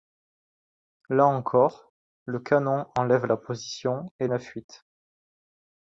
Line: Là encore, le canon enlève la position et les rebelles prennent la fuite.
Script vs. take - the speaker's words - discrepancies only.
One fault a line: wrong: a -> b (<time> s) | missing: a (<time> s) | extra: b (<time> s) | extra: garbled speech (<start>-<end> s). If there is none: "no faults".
missing: les rebelles prennent (4.3 s)